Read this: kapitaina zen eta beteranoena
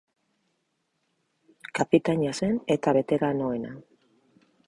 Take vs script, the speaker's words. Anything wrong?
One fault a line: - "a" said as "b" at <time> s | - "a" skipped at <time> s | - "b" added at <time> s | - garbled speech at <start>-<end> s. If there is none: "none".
none